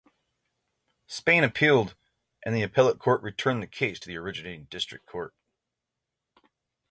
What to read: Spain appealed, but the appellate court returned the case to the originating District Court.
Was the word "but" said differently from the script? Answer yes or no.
yes